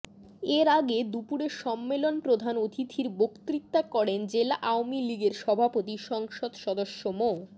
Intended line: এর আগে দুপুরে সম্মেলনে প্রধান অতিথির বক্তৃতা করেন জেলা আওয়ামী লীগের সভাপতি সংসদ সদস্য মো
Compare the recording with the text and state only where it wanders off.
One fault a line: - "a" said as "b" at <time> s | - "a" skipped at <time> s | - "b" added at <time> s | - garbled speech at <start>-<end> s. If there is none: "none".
none